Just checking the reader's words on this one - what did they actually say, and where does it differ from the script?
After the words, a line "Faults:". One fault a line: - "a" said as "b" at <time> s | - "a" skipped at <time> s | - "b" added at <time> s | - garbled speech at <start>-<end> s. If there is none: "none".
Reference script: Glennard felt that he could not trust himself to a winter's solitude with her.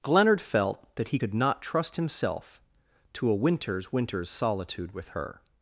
Glennard felt that he could not trust himself to a winter's winter's solitude with her.
Faults:
- "winter's" added at 3.9 s